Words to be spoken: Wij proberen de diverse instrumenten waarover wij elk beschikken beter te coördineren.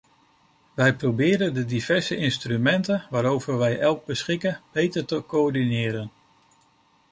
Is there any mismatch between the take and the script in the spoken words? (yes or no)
no